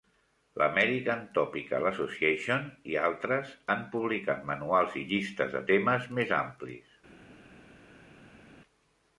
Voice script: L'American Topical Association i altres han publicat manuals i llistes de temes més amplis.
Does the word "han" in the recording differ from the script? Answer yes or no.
no